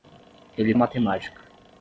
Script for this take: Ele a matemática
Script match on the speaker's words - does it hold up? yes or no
yes